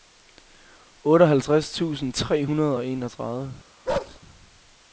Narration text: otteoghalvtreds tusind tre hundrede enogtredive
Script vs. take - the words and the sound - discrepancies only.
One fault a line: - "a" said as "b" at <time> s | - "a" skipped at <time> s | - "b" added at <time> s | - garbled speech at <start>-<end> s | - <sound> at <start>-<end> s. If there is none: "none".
- "og" added at 2.7 s
- bark at 3.9-4.2 s